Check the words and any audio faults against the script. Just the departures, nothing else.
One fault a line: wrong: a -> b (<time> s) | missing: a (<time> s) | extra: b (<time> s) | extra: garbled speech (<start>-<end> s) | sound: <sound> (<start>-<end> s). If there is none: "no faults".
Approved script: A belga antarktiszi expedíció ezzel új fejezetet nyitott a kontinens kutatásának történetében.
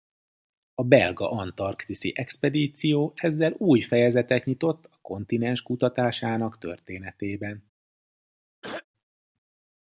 sound: throat clearing (8.6-8.8 s)